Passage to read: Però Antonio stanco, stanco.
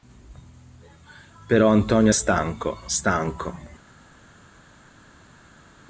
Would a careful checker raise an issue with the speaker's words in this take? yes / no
no